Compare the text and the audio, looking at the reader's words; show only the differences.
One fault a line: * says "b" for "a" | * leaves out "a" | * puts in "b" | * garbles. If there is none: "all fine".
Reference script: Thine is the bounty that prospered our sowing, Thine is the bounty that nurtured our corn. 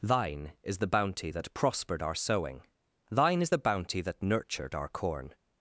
all fine